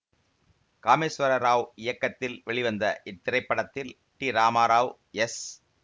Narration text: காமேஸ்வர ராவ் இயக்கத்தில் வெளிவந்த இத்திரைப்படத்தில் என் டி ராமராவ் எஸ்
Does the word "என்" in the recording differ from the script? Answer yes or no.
yes